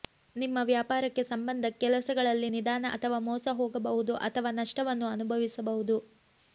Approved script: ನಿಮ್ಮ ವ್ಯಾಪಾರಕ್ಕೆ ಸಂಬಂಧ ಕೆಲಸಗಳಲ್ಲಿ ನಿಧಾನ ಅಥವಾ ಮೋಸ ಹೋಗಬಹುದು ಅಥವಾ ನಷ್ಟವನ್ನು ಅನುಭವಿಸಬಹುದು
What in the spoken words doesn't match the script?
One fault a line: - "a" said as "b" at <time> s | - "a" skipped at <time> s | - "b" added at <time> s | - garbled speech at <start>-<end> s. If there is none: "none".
none